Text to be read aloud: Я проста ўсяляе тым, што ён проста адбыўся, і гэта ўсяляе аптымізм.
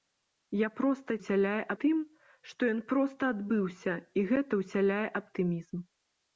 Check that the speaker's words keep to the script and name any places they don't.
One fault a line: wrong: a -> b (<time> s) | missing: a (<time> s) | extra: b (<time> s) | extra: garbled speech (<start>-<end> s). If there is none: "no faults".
no faults